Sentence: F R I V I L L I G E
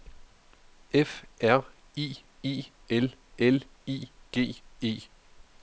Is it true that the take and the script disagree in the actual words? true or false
true